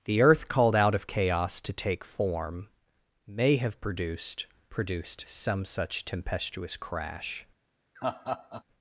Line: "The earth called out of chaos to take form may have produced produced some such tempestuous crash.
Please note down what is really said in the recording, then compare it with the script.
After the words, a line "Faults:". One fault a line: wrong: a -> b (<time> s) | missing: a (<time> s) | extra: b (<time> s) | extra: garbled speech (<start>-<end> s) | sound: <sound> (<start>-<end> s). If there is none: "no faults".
"The earth called out of chaos to take form may have produced produced some such tempestuous crash.
Faults:
sound: laugh (8.0-8.6 s)